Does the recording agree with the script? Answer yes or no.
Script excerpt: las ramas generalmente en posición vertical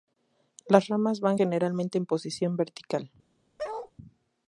no